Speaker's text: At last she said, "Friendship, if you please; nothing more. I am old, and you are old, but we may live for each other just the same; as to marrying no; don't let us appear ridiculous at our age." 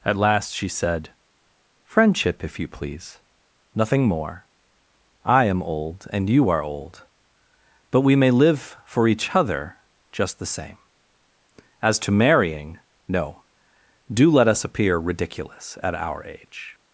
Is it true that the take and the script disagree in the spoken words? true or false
true